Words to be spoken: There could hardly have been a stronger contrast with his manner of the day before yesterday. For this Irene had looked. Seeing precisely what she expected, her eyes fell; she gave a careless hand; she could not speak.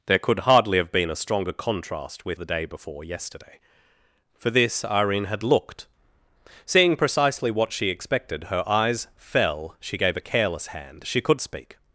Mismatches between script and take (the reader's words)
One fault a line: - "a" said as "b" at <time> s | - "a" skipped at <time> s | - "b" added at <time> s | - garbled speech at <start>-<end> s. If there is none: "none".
- "his manner of" skipped at 2.4 s
- "not" skipped at 11.4 s